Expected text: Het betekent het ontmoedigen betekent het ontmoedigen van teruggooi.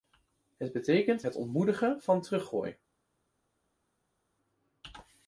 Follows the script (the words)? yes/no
no